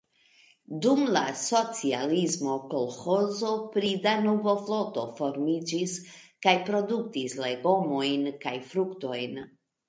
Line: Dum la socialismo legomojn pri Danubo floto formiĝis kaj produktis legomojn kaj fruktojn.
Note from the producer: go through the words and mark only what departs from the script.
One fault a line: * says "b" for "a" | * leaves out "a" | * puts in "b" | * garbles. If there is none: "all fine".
* says "kolĥozo" for "legomojn"